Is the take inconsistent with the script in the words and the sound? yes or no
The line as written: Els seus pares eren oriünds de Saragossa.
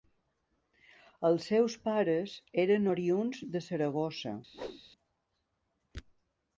yes